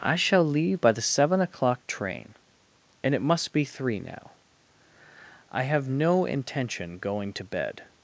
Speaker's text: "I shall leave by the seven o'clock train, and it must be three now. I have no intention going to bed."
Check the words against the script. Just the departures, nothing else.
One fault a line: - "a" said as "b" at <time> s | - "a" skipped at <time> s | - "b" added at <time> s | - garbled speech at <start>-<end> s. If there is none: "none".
none